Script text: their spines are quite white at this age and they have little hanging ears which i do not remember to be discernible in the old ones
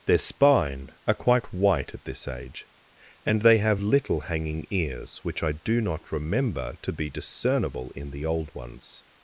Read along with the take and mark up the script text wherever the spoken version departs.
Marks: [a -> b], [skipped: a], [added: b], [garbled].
their [spines -> spine] are quite white at this age and they have little hanging ears which i do not remember to be discernible in the old ones